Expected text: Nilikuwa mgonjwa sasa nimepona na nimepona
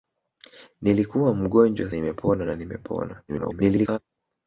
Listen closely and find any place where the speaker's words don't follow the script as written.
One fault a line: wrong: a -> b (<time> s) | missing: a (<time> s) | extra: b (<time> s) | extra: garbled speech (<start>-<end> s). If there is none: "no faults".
missing: sasa (1.9 s)
extra: garbled speech (3.3-4.0 s)